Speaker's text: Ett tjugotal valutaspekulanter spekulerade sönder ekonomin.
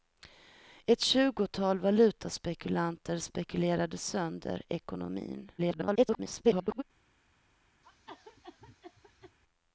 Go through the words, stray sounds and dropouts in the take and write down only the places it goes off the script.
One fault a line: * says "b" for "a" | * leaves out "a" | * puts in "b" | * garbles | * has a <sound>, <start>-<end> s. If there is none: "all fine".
* garbles
* has a cough, 7.8-9.4 s